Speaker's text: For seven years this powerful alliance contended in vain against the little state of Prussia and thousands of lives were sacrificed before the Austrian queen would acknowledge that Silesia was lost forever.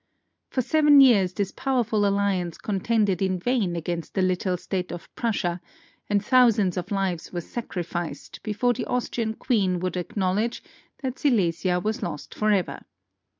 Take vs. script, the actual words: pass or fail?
pass